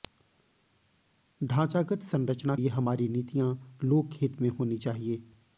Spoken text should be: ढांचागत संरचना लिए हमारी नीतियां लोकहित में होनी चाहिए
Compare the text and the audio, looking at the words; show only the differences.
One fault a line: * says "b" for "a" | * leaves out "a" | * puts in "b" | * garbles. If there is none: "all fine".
all fine